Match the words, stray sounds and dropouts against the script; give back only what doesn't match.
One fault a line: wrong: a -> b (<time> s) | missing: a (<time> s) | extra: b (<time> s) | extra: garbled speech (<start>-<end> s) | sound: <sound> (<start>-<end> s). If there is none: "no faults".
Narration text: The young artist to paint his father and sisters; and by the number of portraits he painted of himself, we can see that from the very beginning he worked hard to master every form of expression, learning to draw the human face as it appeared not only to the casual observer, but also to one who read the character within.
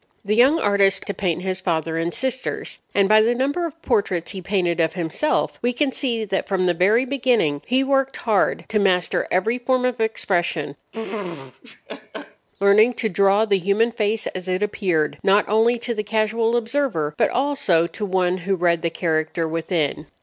sound: laugh (10.9-12.5 s)